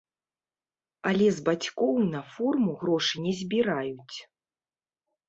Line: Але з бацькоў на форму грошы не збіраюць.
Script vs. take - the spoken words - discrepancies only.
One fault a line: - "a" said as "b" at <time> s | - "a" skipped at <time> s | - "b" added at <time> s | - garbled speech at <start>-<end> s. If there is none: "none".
none